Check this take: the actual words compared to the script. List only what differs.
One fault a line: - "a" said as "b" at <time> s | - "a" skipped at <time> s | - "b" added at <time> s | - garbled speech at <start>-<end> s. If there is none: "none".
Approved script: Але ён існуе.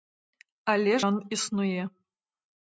none